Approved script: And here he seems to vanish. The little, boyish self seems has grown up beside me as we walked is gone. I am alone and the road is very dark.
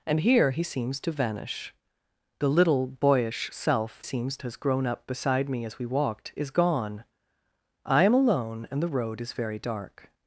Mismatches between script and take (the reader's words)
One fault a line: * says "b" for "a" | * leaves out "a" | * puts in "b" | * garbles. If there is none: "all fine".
all fine